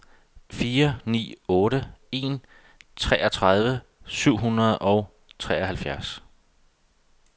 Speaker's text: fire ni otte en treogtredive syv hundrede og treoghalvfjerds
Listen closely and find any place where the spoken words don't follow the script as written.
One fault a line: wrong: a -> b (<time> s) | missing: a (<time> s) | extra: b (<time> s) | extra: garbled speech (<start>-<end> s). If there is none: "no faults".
no faults